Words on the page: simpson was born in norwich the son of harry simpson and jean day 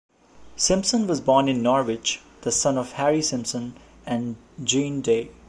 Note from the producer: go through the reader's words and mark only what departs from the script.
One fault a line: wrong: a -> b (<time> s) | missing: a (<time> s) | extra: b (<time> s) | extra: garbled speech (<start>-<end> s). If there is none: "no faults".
no faults